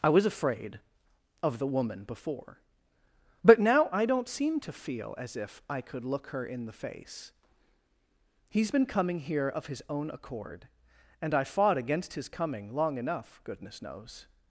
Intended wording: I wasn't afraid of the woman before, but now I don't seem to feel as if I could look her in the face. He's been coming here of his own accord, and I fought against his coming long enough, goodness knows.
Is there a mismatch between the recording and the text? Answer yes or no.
yes